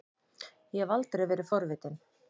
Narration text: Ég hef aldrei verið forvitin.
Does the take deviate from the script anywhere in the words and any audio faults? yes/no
no